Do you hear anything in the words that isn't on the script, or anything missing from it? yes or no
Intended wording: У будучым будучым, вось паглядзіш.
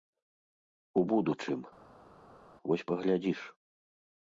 yes